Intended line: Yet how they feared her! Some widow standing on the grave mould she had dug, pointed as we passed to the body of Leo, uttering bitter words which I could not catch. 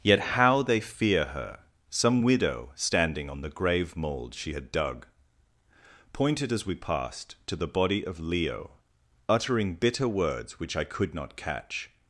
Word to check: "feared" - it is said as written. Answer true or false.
false